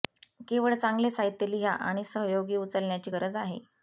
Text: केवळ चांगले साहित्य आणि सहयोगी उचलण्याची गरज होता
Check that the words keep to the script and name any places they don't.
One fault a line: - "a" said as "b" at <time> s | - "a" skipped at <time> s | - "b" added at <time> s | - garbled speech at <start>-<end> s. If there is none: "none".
- "लिहा" added at 1.5 s
- "होता" said as "आहे" at 3.4 s